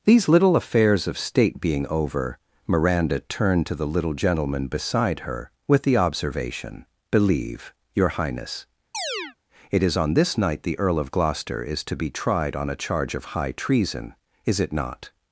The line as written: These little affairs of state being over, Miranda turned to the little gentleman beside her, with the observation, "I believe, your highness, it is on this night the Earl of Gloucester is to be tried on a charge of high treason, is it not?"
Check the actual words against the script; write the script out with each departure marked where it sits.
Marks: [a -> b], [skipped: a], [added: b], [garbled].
These little affairs of state being over, Miranda turned to the little gentleman beside her, with the observation, [skipped: "I] believe, your highness, it is on this night the Earl of Gloucester is to be tried on a charge of high treason, is it not?"